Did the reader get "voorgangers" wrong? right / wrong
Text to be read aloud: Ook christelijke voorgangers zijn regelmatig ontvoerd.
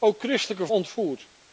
wrong